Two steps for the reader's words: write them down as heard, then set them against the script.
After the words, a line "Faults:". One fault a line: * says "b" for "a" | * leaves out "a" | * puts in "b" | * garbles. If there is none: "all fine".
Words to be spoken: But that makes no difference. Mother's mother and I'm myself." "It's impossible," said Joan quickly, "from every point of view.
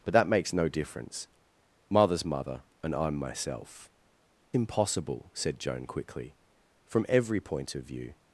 But that makes no difference. Mother's mother and I'm myself." "Impossible," said Joan quickly, "from every point of view.
Faults:
* leaves out "It's"